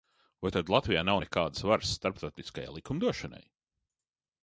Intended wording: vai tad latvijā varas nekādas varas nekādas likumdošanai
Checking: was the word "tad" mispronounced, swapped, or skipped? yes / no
no